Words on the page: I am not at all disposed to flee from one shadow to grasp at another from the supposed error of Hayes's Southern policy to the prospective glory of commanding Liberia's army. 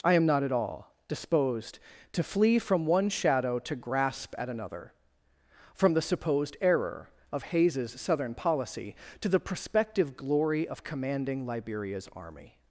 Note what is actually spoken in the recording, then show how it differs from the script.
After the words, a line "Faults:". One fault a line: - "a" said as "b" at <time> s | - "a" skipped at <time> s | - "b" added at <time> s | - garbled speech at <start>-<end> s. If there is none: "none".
I am not at all disposed to flee from one shadow to grasp at another from the supposed error of Hayes's Southern policy to the prospective glory of commanding Liberia's army.
Faults:
none